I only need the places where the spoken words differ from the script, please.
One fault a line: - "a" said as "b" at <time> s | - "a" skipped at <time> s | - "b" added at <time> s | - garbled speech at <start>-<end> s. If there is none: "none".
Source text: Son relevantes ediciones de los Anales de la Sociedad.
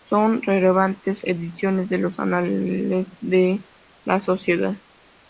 none